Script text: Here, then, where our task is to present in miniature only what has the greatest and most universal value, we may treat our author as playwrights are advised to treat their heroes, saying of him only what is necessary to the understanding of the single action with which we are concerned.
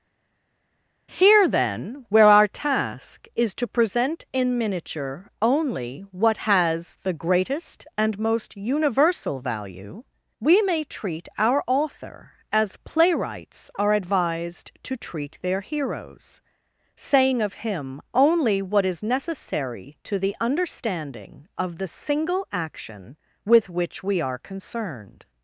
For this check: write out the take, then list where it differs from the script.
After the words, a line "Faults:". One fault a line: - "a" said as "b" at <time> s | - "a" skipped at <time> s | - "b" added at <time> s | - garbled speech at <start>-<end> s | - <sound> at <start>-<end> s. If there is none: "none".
Here, then, where our task is to present in miniature only what has the greatest and most universal value, we may treat our author as playwrights are advised to treat their heroes, saying of him only what is necessary to the understanding of the single action with which we are concerned.
Faults:
none